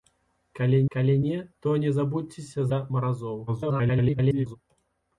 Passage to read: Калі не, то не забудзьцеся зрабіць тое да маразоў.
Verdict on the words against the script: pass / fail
fail